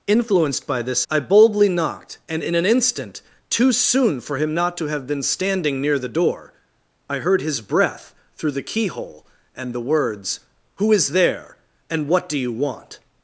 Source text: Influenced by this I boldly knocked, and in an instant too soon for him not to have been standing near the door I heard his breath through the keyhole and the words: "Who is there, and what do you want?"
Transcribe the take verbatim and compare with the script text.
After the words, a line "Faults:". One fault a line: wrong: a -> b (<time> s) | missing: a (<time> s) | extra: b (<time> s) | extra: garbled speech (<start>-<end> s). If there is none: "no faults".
Influenced by this I boldly knocked, and in an instant too soon for him not to have been standing near the door I heard his breath through the keyhole and the words: "Who is there, and what do you want?"
Faults:
no faults